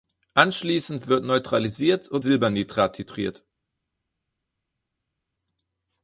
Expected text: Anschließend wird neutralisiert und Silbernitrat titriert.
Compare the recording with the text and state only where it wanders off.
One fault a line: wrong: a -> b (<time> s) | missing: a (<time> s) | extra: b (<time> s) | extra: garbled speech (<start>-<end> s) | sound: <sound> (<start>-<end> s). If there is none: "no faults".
no faults